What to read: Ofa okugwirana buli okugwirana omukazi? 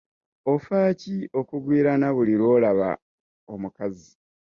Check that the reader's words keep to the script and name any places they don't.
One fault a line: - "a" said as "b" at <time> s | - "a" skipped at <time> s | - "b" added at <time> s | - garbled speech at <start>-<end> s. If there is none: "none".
- "ki" added at 1.0 s
- "okugwirana" said as "lw'olaba" at 2.4 s